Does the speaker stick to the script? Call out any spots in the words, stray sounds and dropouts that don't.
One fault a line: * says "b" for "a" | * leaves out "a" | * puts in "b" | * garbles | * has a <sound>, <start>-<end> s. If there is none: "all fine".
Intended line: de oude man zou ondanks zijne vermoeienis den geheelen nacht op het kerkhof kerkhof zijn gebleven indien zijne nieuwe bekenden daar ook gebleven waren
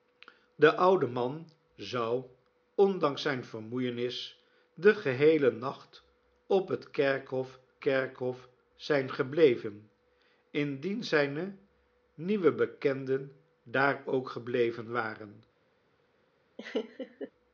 * has a laugh, 16.6-17.3 s